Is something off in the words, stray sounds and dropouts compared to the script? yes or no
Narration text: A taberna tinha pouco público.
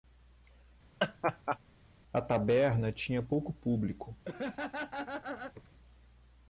yes